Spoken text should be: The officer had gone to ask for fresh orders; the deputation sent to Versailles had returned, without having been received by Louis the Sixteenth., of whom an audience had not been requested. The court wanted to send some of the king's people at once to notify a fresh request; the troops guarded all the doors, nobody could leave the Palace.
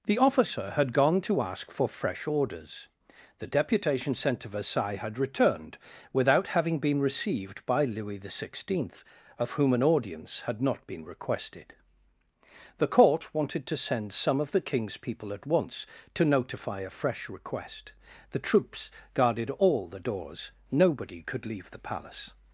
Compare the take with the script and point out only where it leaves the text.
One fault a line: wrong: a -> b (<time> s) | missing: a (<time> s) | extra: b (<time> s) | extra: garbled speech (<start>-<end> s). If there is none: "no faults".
no faults